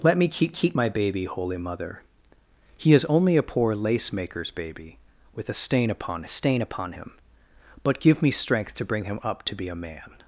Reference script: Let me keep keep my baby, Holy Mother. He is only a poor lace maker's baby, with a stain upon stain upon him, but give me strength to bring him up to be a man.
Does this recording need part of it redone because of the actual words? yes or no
no